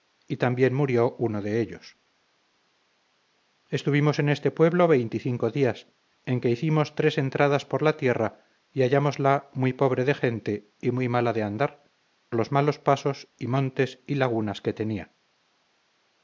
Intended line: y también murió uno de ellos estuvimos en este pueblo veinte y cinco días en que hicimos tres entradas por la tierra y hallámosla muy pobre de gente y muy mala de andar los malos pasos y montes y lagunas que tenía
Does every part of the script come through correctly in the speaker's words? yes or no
yes